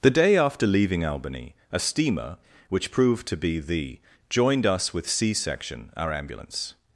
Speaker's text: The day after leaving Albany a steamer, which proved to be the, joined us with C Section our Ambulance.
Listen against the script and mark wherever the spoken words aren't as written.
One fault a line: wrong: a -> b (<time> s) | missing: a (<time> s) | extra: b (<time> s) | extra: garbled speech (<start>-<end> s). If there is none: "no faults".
no faults